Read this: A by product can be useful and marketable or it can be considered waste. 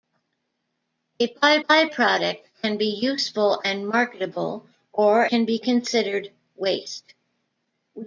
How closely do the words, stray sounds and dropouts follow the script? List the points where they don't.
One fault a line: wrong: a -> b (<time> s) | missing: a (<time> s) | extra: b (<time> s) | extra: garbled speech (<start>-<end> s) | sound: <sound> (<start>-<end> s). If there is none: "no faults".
extra: by (1.7 s)
missing: it (5.3 s)